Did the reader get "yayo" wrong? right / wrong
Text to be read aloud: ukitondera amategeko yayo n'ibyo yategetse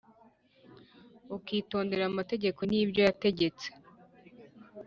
wrong